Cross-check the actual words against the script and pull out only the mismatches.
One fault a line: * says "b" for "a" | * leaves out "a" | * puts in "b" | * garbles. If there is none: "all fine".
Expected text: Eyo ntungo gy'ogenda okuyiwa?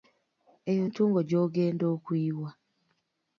all fine